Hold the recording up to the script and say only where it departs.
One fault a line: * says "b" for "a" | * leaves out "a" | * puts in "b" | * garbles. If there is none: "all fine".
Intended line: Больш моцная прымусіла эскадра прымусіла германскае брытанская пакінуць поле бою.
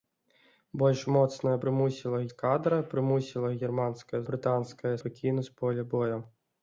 all fine